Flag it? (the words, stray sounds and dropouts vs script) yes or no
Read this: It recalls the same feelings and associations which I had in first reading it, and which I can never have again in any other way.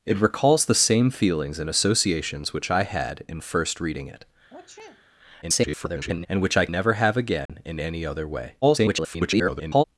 yes